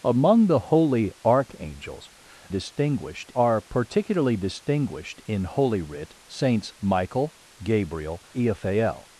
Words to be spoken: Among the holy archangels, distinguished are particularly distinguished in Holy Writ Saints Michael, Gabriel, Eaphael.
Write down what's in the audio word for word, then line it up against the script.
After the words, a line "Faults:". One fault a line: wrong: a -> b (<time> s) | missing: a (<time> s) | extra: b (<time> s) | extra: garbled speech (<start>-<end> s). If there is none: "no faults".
Among the holy archangels, distinguished are particularly distinguished in Holy Writ Saints Michael, Gabriel, Eaphael.
Faults:
no faults